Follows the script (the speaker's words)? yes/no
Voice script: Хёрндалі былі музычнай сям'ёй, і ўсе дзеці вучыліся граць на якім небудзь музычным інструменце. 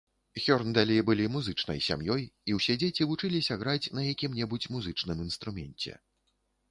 yes